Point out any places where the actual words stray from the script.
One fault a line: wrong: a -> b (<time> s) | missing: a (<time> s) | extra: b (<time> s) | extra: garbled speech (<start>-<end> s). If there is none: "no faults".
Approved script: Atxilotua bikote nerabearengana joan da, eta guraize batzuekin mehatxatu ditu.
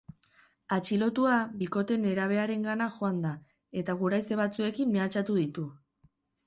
no faults